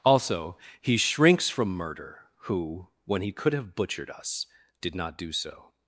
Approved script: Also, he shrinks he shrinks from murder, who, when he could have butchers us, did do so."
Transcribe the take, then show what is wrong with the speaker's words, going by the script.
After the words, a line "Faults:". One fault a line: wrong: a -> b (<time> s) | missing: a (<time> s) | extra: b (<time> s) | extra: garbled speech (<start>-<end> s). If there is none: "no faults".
Also, he shrinks from murder, who, when he could have butchered us, did not do so."
Faults:
missing: he shrinks (1.5 s)
wrong: butchers -> butchered (3.8 s)
extra: not (5.0 s)